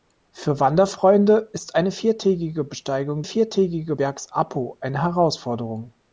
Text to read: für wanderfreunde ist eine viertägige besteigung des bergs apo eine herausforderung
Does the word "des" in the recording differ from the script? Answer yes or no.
yes